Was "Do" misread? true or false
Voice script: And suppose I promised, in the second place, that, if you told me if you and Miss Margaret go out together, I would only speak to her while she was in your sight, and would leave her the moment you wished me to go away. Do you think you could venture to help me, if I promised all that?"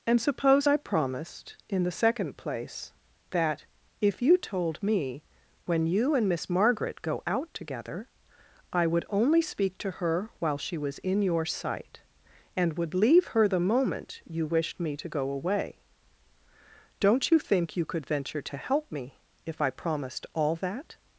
true